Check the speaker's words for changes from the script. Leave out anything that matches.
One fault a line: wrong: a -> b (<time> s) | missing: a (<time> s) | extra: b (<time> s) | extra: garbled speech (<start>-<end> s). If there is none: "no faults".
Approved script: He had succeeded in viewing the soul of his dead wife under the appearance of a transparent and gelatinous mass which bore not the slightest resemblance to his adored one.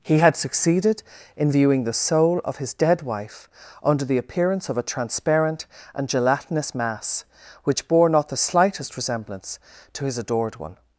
no faults